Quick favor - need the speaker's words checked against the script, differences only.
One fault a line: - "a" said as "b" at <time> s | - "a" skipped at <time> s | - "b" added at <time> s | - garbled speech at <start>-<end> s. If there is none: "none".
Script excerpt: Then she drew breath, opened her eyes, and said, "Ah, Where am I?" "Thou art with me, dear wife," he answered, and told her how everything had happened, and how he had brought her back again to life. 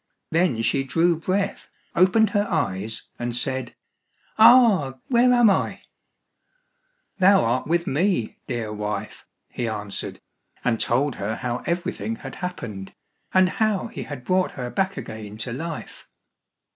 none